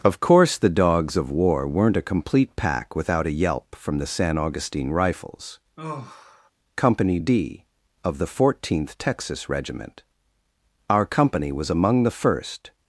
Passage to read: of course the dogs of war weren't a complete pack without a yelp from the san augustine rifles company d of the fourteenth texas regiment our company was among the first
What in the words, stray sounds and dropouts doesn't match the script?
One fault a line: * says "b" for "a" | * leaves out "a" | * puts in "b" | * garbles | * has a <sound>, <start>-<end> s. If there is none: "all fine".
* has a sigh, 5.8-6.5 s